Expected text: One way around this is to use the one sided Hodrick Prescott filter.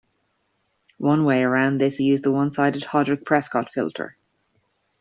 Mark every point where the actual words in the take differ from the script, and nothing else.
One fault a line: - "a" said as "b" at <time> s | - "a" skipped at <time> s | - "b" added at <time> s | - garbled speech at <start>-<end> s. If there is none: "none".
- "is to" skipped at 2.0 s